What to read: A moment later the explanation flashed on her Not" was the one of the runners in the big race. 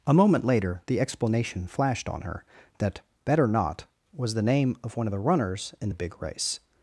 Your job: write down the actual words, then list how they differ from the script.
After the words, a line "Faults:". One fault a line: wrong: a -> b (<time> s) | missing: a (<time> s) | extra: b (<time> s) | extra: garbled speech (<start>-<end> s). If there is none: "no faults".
A moment later the explanation flashed on her that "Better Not" was the name of one of the runners in the big race.
Faults:
extra: that Better (2.8 s)
extra: name of (4.4 s)